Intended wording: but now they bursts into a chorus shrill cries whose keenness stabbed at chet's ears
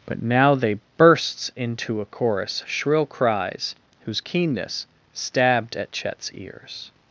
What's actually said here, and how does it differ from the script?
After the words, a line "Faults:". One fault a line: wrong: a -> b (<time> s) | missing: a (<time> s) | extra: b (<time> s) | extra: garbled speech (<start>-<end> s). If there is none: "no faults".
but now they bursts into a chorus shrill cries whose keenness stabbed at chet's ears
Faults:
no faults